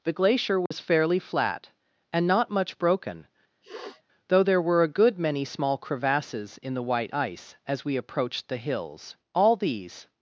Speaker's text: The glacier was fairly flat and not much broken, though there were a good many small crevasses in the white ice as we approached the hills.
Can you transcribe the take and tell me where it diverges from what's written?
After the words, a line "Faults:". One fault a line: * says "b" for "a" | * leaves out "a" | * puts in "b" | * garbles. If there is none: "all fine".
The glacier was fairly flat and not much broken, though there were a good many small crevasses in the white ice as we approached the hills. All these
Faults:
* puts in "All these"